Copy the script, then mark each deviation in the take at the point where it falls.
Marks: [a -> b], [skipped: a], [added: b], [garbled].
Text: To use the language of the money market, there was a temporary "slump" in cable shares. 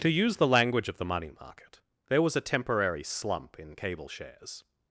To use the language of the money market, there was a temporary "slump" in cable shares.